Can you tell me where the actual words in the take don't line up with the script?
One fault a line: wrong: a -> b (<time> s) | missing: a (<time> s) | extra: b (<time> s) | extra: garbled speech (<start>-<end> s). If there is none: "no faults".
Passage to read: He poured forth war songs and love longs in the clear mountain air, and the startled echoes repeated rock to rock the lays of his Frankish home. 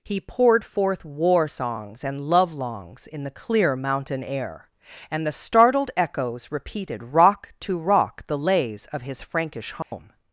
no faults